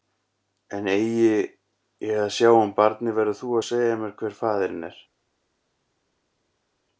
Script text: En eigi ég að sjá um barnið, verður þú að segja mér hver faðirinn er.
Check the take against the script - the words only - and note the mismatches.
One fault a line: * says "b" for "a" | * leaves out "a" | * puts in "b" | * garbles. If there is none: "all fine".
all fine